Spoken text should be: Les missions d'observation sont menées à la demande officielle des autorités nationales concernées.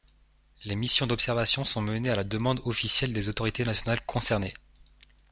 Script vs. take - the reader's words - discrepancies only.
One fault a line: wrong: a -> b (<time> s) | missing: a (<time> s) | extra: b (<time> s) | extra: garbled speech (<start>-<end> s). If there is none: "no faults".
no faults